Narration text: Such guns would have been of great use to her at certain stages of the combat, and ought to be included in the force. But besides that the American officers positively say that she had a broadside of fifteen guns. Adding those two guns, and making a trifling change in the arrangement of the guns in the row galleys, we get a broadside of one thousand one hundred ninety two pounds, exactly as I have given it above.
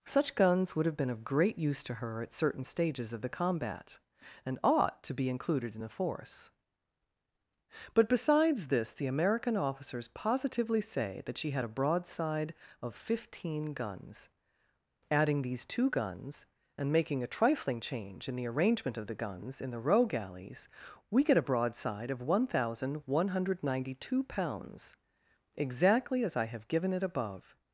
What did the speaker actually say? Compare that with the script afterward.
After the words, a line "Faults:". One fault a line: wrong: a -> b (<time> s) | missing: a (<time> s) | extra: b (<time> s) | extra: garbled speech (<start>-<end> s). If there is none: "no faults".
Such guns would have been of great use to her at certain stages of the combat, and ought to be included in the force. But besides this the American officers positively say that she had a broadside of fifteen guns. Adding these two guns, and making a trifling change in the arrangement of the guns in the row galleys, we get a broadside of one thousand one hundred ninety two pounds, exactly as I have given it above.
Faults:
wrong: that -> this (8.7 s)
wrong: those -> these (15.4 s)